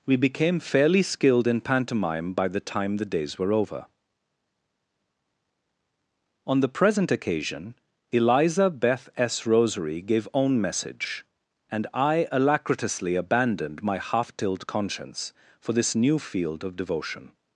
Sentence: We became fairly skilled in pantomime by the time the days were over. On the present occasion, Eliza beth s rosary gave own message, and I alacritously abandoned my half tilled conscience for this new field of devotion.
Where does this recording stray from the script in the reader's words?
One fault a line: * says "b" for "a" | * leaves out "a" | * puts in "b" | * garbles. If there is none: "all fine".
all fine